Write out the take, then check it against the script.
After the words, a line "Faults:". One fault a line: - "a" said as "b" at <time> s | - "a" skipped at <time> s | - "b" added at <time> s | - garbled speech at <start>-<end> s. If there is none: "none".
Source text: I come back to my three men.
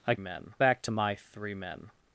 I men back to my three men.
Faults:
- "come" said as "men" at 0.2 s